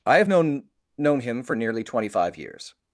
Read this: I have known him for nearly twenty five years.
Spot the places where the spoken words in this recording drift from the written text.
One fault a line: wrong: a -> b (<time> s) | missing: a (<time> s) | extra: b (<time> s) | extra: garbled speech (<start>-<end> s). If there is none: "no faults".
extra: known (1.0 s)